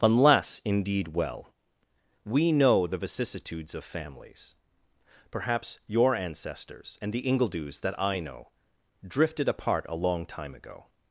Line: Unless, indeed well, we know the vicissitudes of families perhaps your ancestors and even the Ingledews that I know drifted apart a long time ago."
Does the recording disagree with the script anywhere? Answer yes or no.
yes